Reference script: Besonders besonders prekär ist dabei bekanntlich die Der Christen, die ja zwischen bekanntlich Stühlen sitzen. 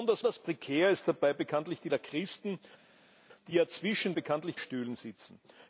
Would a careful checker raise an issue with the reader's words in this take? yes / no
no